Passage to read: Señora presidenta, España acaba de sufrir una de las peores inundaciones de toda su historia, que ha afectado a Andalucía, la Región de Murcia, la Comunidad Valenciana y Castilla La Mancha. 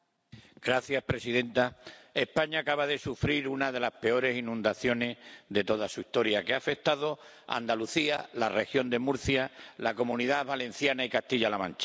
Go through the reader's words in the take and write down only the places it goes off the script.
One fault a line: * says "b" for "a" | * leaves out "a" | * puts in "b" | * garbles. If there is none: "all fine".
all fine